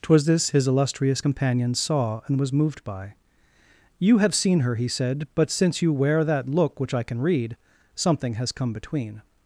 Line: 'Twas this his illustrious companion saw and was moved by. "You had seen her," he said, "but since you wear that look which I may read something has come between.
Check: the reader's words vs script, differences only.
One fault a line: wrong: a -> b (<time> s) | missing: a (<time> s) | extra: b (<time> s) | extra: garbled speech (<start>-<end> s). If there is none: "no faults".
wrong: had -> have (4.2 s)
wrong: may -> can (7.0 s)